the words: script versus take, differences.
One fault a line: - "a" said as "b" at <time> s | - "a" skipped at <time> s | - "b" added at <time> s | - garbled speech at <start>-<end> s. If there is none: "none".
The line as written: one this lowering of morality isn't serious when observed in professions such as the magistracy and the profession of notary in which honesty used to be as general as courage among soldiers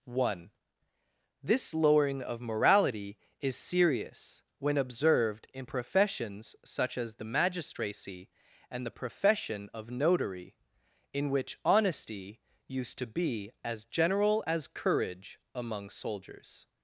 - "isn't" said as "is" at 3.4 s